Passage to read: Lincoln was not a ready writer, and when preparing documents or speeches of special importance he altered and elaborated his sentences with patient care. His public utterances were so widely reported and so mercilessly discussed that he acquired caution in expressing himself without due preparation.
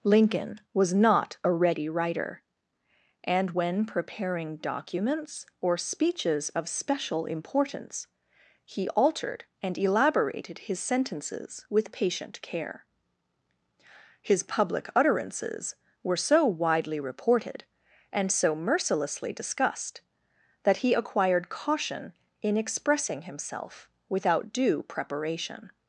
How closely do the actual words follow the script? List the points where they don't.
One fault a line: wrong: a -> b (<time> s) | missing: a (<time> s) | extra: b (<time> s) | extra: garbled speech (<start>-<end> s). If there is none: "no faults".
no faults